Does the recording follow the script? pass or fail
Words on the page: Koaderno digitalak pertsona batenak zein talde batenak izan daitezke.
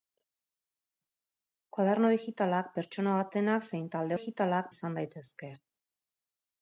fail